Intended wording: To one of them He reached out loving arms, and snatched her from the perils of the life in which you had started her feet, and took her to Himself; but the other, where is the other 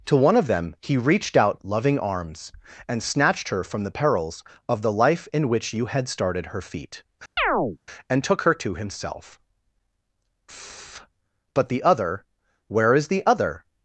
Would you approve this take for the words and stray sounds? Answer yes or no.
no